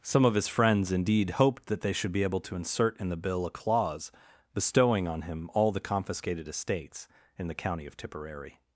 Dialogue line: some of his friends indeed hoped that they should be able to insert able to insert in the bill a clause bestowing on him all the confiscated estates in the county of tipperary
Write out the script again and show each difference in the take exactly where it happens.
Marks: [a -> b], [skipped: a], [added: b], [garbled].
some of his friends indeed hoped that they should be able to insert [skipped: able to insert] in the bill a clause bestowing on him all the confiscated estates in the county of tipperary